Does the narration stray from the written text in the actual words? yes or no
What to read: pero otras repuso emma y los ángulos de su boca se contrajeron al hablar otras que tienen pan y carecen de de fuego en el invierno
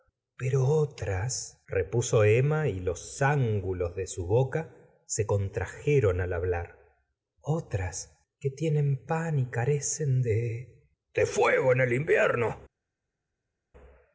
no